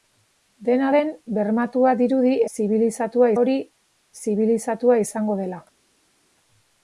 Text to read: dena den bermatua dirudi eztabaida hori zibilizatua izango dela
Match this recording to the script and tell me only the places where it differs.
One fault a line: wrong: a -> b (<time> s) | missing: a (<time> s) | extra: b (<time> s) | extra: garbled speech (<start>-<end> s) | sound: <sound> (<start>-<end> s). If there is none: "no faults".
wrong: eztabaida -> zibilizatua (2.6 s)